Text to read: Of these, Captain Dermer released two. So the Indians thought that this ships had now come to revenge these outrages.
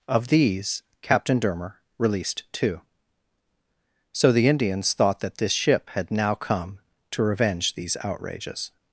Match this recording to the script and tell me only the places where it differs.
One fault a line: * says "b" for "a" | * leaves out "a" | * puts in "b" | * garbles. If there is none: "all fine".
* says "ship" for "ships"